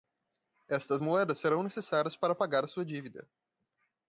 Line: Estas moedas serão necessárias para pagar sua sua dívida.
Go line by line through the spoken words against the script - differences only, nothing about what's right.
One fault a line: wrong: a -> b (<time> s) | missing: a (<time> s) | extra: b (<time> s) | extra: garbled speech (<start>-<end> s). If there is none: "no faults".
missing: sua (2.9 s)